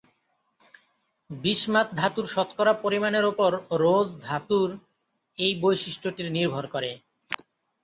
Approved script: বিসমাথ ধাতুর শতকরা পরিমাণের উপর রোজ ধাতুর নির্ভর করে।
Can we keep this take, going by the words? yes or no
no